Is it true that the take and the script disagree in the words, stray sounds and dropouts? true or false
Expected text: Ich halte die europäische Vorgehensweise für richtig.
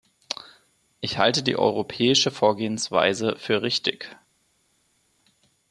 false